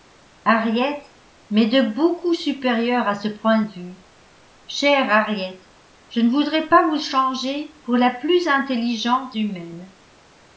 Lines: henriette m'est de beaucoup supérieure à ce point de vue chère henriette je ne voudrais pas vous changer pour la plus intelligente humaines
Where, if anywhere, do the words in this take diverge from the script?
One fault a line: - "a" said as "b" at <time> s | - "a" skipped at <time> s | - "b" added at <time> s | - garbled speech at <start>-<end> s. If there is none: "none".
none